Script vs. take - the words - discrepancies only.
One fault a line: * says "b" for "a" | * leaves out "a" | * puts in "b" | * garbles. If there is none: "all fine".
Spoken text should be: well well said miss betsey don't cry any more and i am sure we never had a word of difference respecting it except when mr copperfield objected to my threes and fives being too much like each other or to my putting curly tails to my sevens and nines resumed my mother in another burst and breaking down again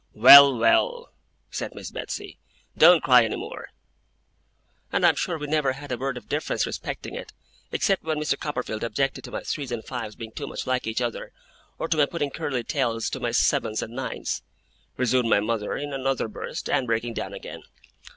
all fine